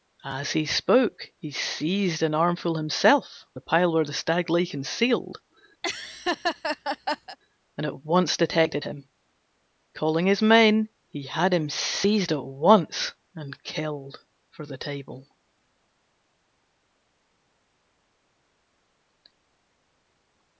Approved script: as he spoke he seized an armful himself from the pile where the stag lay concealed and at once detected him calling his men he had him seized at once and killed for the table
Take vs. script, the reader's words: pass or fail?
fail